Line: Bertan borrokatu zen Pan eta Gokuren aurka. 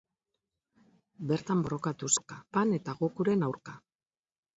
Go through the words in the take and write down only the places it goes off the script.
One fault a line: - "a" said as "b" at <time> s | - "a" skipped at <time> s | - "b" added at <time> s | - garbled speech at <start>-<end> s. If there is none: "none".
- "zen" said as "aurka" at 2.2 s